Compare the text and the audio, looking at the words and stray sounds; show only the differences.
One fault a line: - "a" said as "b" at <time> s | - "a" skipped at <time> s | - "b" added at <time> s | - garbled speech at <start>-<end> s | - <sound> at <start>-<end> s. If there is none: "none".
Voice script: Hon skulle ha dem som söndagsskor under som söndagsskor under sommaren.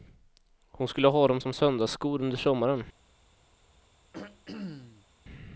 - "som söndagsskor under" skipped at 2.4 s
- throat clearing at 4.1-5.1 s